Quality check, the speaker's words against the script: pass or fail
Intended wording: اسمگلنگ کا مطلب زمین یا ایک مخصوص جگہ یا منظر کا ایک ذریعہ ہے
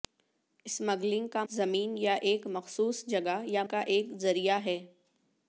fail